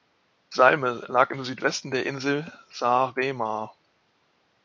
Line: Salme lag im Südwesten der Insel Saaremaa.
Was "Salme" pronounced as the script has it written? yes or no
yes